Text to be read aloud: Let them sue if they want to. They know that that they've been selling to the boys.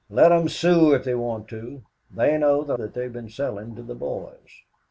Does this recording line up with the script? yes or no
yes